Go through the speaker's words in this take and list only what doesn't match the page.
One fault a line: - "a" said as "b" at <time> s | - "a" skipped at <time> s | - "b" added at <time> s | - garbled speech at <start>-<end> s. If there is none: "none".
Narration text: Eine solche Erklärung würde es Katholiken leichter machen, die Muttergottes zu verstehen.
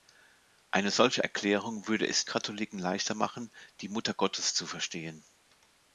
none